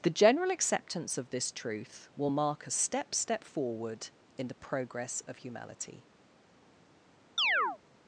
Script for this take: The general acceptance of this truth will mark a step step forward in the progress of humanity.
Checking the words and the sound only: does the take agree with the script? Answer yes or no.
no